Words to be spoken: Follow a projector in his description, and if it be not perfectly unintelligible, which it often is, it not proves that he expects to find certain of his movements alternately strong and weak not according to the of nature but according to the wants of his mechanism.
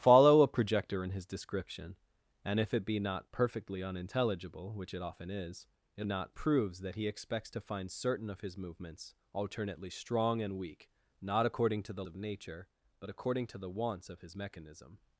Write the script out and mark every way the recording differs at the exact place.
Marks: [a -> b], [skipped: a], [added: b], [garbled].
Follow a projector in his description, and if it be not perfectly unintelligible, which it often is, it not proves that he expects to find certain of his movements alternately strong and weak not according to the of nature but according to the wants of his mechanism.